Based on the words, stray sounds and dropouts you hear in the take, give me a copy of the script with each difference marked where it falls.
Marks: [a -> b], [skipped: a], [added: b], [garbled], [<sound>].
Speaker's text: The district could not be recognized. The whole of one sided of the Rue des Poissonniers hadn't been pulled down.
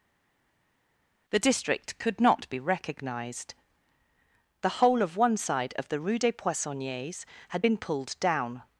The district could not be recognized. The whole of one [sided -> side] of the Rue des Poissonniers [hadn't -> had] been pulled down.